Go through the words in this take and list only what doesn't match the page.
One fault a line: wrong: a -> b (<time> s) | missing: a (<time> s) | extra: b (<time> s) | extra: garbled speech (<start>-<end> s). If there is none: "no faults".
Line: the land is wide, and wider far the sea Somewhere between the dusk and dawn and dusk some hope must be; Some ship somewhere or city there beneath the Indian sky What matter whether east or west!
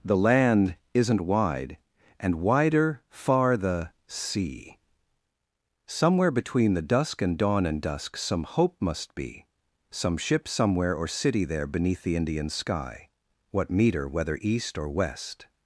wrong: is -> isn't (0.9 s)
wrong: matter -> meter (13.7 s)